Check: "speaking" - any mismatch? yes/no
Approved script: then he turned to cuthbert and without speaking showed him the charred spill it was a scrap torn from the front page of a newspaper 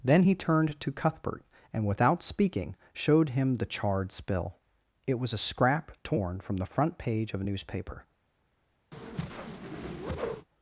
no